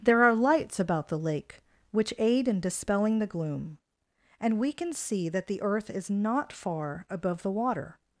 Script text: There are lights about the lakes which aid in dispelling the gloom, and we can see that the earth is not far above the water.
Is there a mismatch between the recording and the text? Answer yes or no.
yes